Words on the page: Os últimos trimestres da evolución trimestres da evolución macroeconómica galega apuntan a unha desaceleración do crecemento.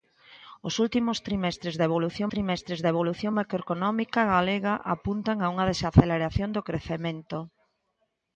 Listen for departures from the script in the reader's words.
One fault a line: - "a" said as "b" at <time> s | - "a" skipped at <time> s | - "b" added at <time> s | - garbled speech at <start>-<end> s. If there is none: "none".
none